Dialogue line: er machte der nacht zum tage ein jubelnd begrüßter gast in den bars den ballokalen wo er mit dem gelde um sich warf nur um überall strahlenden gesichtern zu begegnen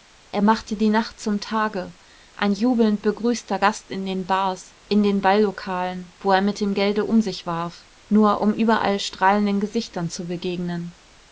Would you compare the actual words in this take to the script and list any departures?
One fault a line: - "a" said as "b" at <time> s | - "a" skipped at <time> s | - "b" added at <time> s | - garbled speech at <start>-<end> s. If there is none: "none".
- "der" said as "die" at 0.8 s
- "in" added at 4.9 s